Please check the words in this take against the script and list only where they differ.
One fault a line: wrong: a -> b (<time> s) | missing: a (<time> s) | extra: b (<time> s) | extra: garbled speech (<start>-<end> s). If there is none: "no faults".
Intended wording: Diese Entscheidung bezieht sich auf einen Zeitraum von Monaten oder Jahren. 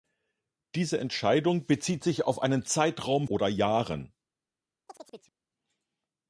missing: von Monaten (3.3 s)